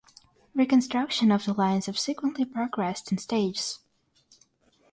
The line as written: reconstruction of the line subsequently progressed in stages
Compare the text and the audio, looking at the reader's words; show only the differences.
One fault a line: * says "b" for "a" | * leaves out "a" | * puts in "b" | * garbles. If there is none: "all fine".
all fine